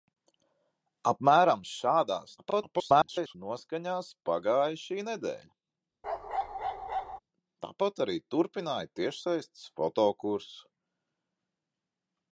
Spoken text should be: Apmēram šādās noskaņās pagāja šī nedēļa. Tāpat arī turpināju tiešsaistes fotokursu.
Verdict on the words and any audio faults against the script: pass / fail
fail